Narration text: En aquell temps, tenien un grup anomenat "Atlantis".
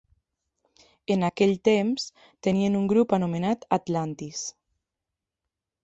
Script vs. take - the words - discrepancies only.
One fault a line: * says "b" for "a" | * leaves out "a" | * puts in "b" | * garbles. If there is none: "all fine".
all fine